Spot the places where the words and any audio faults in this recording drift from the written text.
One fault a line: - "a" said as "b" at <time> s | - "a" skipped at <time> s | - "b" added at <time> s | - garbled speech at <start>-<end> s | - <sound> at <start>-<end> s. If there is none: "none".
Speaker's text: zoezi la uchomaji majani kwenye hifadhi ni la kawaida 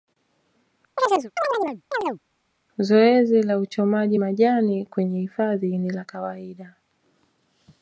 - chirp at 1.0-2.2 s